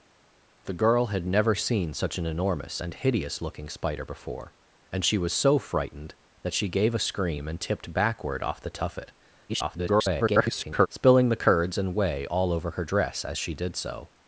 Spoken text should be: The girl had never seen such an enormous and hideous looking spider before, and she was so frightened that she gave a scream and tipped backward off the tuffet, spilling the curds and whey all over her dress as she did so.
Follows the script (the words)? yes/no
no